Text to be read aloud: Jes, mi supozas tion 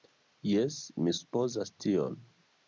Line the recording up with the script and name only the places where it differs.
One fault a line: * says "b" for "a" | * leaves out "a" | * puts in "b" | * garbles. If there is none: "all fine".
all fine